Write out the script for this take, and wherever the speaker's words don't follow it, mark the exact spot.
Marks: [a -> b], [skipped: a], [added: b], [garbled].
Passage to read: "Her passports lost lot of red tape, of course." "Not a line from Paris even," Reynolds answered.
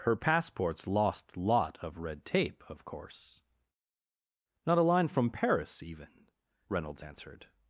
"Her passports lost lot of red tape, of course." "Not a line from Paris even," Reynolds answered.